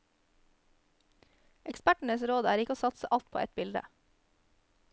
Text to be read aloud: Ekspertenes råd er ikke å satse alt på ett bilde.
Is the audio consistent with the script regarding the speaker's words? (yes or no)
yes